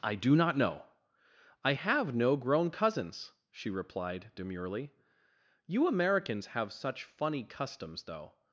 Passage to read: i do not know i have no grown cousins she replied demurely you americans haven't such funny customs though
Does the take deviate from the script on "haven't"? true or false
true